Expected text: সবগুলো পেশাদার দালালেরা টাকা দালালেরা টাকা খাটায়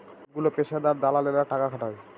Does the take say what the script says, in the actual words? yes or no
no